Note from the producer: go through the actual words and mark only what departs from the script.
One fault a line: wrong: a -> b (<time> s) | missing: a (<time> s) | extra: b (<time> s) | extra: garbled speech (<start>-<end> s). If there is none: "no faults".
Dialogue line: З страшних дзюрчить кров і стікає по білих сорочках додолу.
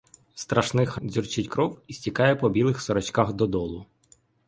no faults